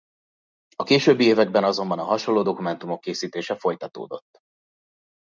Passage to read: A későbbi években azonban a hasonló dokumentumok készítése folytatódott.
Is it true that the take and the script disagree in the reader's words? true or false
false